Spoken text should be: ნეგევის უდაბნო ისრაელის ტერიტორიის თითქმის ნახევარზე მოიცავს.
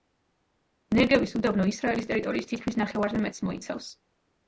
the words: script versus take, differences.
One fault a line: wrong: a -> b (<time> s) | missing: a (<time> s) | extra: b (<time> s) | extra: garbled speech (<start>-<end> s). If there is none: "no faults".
extra: მეტს (3.3 s)